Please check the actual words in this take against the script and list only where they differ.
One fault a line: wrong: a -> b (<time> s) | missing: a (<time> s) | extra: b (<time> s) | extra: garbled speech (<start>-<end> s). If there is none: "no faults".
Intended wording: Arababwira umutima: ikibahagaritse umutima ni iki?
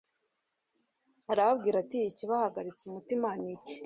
wrong: umutima -> ati (1.8 s)